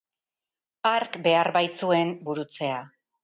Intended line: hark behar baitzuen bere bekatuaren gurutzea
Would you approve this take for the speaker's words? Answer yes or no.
no